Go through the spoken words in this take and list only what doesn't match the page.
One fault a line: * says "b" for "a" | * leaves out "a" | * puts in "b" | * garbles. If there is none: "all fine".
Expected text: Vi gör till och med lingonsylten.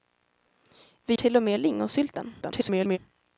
* leaves out "gör"
* garbles